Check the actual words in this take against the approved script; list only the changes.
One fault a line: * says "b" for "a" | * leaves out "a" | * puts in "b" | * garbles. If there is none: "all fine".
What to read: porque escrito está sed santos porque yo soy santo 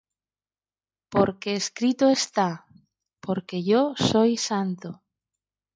* leaves out "sed santos"